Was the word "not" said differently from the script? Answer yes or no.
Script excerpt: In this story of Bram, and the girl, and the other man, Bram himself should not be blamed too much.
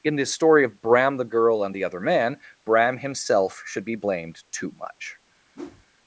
yes